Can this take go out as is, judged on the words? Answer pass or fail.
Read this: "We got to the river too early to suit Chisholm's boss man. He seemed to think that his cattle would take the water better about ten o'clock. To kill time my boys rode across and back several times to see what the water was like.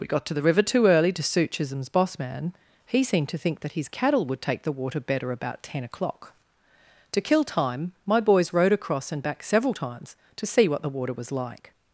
pass